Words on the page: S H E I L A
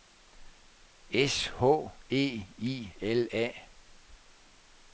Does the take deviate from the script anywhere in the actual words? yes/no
no